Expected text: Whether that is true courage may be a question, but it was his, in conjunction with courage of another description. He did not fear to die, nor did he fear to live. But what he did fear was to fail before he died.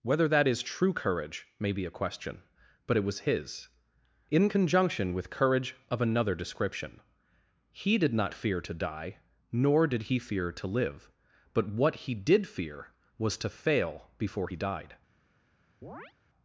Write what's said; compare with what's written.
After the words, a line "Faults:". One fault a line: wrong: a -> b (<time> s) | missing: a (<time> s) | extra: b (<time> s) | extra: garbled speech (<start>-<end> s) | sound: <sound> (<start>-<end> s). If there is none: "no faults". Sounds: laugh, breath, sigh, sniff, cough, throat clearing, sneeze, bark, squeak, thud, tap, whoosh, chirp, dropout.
Whether that is true courage may be a question, but it was his, in conjunction with courage of another description. He did not fear to die, nor did he fear to live. But what he did fear was to fail before he died.
Faults:
sound: chirp (15.8-16.1 s)